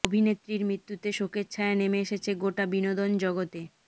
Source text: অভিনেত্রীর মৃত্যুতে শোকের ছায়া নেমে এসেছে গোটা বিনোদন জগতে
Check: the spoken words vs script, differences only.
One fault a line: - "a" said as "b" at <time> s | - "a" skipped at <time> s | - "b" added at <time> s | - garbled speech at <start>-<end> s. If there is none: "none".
none